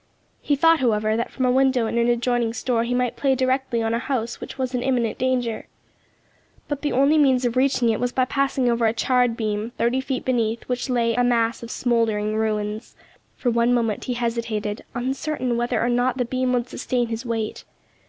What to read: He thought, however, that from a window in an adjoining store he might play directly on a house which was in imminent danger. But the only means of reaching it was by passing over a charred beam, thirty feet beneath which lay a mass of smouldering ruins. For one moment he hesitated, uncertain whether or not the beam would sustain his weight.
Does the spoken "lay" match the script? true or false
true